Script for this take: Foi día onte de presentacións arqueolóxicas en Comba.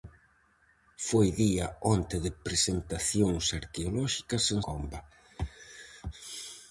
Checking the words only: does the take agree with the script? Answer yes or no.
yes